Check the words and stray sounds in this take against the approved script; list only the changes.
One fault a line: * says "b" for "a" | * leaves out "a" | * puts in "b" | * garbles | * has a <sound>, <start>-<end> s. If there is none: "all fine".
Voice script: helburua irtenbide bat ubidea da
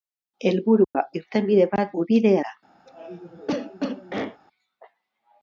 * has a dropout, 0.8-0.9 s
* has a cough, 2.9-4.4 s